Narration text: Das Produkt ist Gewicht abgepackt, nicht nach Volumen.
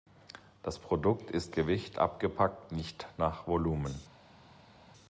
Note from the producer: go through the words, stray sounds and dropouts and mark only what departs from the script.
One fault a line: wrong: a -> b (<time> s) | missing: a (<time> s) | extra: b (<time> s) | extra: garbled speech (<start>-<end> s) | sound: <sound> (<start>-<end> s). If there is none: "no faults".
no faults